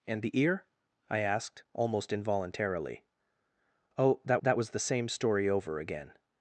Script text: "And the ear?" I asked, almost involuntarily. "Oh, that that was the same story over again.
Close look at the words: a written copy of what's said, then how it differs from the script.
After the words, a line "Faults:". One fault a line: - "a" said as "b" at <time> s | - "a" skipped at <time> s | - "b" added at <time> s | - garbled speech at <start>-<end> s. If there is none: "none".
"And the ear?" I asked, almost involuntarily. "Oh, that that was the same story over again.
Faults:
none